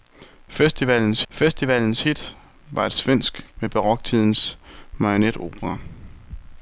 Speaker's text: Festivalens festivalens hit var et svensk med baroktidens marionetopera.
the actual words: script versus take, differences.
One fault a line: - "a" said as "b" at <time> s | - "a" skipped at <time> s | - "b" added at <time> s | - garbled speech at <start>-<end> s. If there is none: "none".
none